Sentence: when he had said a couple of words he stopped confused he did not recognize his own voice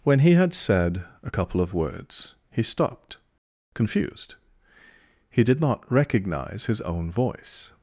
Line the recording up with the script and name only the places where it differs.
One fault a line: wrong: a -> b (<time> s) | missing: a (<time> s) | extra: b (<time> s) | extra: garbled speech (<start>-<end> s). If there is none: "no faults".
no faults